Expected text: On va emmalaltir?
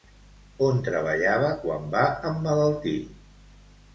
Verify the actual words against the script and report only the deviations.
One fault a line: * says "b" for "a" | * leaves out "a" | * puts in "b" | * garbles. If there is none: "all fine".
* puts in "treballava quan"